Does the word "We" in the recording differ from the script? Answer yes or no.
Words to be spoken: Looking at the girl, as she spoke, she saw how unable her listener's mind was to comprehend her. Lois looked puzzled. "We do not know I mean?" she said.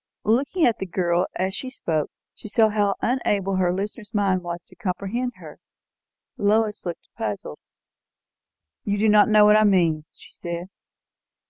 yes